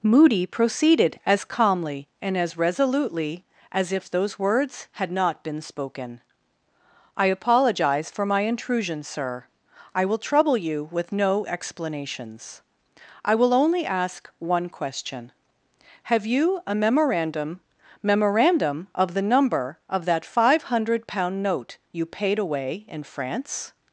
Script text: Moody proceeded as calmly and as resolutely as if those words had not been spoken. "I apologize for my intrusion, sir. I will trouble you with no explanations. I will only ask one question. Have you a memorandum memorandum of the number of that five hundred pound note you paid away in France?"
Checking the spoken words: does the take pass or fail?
pass